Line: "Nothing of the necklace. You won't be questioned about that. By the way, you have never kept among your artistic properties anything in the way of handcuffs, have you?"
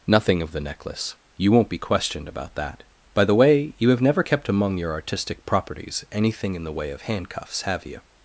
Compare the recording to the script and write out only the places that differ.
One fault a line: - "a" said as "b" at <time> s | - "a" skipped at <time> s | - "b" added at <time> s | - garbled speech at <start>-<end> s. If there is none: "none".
none